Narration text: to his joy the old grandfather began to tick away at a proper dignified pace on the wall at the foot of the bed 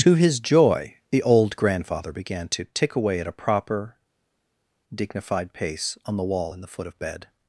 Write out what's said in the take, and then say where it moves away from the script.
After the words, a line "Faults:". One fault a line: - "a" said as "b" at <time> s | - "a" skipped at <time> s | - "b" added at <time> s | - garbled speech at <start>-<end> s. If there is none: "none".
to his joy the old grandfather began to tick away at a proper dignified pace on the wall in the foot of bed
Faults:
- "at" said as "in" at 6.5 s
- "the" skipped at 7.0 s